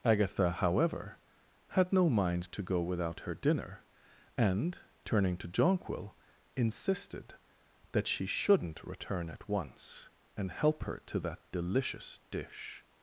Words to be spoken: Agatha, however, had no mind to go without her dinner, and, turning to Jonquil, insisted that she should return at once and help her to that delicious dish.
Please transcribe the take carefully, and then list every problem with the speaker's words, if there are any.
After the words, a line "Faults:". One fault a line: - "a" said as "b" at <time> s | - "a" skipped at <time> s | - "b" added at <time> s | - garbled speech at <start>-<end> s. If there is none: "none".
Agatha, however, had no mind to go without her dinner, and, turning to Jonquil, insisted that she shouldn't return at once and help her to that delicious dish.
Faults:
- "should" said as "shouldn't" at 8.2 s